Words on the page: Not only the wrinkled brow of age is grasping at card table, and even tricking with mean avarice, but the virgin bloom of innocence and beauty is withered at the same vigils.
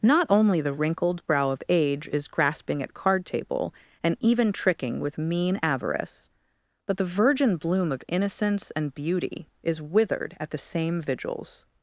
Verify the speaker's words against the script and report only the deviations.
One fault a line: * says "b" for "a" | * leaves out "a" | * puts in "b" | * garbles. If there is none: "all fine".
all fine